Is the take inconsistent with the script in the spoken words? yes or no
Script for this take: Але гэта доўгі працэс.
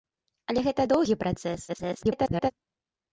yes